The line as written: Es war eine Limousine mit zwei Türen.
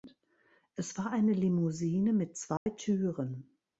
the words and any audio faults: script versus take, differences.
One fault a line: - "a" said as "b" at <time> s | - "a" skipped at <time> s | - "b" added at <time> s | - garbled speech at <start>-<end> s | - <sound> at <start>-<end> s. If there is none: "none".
- dropout at 2.6-2.7 s